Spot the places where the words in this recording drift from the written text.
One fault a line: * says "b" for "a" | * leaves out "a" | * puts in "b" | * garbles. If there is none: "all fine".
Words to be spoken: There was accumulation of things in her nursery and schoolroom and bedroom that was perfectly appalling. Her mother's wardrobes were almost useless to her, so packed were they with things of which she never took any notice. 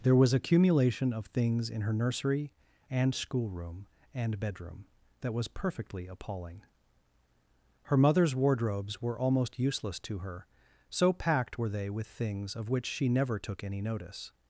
all fine